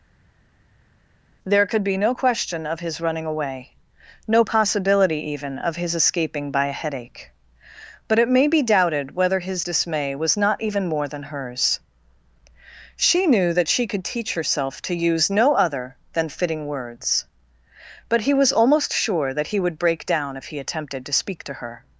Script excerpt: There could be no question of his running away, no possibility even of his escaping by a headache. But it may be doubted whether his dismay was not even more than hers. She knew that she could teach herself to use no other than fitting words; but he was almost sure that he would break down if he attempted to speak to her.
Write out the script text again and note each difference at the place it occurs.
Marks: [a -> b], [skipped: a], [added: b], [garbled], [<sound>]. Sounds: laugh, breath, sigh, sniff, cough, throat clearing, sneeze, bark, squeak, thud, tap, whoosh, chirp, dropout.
There could be no question of his running away, no possibility even of his escaping by a headache. But it may be doubted whether his dismay was not even more than hers. She knew that she could teach herself to use no other than fitting words; but he was almost sure that he would break down if he attempted to speak to her.